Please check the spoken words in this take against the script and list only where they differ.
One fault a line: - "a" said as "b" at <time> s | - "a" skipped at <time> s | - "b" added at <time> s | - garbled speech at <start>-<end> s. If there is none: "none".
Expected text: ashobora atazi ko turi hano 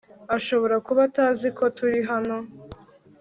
- "kuba" added at 0.8 s